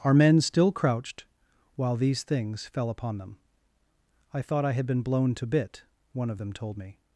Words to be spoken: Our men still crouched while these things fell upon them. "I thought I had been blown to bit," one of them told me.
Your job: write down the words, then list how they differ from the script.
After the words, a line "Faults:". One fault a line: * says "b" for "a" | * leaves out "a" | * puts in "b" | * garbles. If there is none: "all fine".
Our men still crouched while these things fell upon them. "I thought I had been blown to bit," one of them told me.
Faults:
all fine